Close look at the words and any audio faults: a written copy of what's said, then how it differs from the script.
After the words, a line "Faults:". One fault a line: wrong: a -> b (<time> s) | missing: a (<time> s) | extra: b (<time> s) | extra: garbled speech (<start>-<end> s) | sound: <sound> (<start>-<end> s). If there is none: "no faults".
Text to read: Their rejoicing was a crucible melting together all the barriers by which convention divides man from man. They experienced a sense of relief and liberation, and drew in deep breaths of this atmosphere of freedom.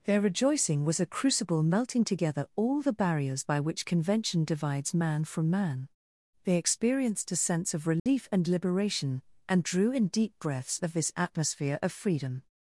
Their rejoicing was a crucible melting together all the barriers by which convention divides man from man. They experienced a sense of relief and liberation, and drew in deep breaths of this atmosphere of freedom.
Faults:
sound: dropout (8.0-8.1 s)